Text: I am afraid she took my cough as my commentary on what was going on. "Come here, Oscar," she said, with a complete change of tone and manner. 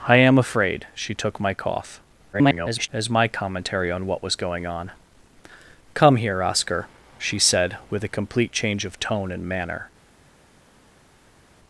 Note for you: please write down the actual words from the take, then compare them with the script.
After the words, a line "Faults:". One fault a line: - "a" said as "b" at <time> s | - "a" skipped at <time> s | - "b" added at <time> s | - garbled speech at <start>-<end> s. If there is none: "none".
I am afraid she took my cough [garbled] as my commentary on what was going on. "Come here, Oscar," she said, with a complete change of tone and manner.
Faults:
- garbled speech at 2.3-2.9 s